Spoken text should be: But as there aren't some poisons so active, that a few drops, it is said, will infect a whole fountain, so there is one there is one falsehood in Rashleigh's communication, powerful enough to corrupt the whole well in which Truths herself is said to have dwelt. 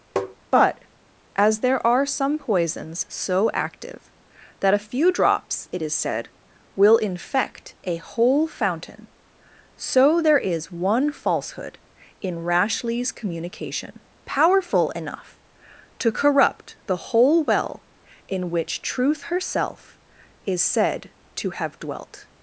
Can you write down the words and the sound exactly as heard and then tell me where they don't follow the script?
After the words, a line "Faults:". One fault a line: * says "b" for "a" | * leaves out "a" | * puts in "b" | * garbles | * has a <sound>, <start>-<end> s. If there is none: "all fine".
But as there are some poisons so active, that a few drops, it is said, will infect a whole fountain, so there is one falsehood in Rashleigh's communication, powerful enough to corrupt the whole well in which Truth herself is said to have dwelt.
Faults:
* has a tap, 0.2-0.4 s
* says "are" for "aren't"
* leaves out "there is one"
* says "Truth" for "Truths"